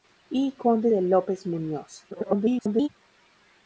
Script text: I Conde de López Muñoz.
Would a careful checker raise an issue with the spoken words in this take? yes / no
yes